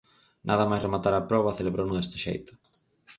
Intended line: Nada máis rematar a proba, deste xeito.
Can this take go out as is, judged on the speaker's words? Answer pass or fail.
fail